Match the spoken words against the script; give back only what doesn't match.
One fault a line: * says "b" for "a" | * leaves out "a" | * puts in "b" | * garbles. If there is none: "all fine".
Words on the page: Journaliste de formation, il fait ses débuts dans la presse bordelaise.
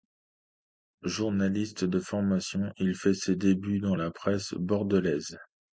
all fine